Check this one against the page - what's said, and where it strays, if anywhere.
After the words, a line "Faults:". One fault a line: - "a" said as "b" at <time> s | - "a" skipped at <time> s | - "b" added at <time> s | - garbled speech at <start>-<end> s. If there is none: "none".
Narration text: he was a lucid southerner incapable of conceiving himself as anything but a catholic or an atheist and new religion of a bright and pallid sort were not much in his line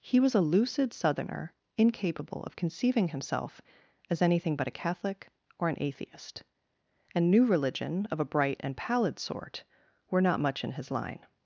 he was a lucid southerner incapable of conceiving himself as anything but a catholic or an atheist and new religion of a bright and pallid sort were not much in his line
Faults:
none